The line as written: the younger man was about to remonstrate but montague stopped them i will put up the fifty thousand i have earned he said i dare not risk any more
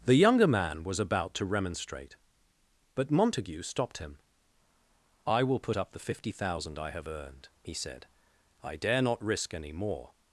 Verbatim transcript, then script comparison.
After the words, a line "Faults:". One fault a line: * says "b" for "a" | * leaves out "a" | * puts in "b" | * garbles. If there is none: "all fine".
the younger man was about to remonstrate but montague stopped him i will put up the fifty thousand i have earned he said i dare not risk any more
Faults:
* says "him" for "them"